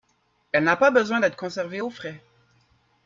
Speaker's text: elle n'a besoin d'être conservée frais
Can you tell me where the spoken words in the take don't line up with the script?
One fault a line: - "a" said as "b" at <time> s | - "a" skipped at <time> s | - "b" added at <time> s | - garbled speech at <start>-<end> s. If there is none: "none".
- "pas" added at 0.8 s
- "au" added at 1.8 s